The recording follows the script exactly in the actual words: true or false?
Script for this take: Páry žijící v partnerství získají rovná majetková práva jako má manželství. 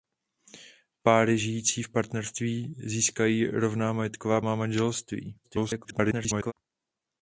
false